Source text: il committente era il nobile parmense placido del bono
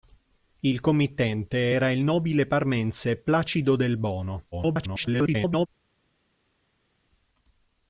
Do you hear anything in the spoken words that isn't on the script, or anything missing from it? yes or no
yes